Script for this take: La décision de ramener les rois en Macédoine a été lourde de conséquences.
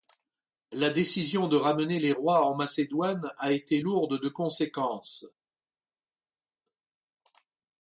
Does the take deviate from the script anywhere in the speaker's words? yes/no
no